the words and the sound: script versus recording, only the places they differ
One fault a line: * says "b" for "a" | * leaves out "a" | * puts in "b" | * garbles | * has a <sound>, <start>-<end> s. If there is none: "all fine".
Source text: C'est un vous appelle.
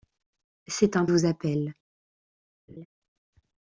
* has a laugh, 2.7-2.9 s